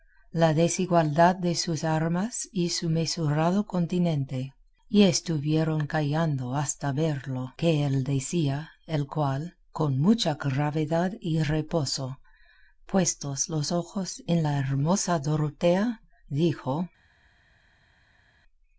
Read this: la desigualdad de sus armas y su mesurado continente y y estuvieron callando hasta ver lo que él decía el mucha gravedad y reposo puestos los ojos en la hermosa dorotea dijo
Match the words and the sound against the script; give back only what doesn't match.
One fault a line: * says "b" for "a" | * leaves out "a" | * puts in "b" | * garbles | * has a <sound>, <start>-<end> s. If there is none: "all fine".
* leaves out "y"
* puts in "cual con"